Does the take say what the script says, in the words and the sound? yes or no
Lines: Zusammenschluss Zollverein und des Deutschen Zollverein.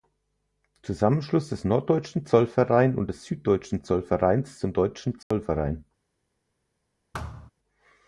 no